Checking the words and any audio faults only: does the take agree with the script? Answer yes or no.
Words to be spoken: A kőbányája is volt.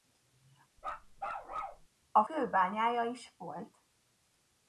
no